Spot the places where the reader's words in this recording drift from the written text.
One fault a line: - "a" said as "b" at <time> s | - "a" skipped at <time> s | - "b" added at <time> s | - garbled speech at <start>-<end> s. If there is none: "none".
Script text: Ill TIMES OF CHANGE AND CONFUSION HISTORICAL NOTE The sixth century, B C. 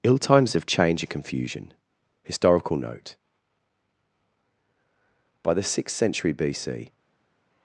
- "By" added at 5.4 s